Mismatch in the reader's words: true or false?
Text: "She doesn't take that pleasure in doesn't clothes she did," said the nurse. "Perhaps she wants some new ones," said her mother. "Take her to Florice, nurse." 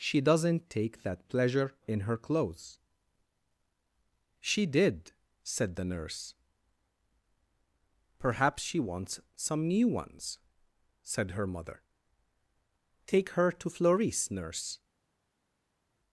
true